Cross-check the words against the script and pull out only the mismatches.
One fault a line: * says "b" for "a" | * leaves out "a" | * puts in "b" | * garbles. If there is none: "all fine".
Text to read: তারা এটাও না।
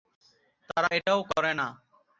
* puts in "করে"